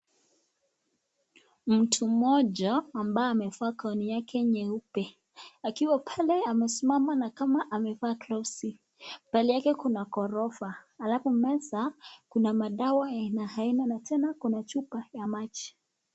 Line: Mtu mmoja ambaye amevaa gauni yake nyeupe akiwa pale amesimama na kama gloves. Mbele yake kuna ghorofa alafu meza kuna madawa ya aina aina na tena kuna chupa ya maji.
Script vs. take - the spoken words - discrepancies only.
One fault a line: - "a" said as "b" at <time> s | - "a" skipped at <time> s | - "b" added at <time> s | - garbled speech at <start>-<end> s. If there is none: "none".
- "amevaa" added at 7.7 s